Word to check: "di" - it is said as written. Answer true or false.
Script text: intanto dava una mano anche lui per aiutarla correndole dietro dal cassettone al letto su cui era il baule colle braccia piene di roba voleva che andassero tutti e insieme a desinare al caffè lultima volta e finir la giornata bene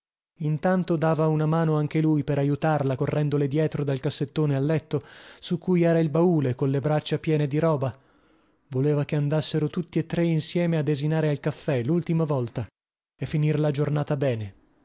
true